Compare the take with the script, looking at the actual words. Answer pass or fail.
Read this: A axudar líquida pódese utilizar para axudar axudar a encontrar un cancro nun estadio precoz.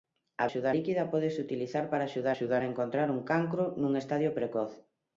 pass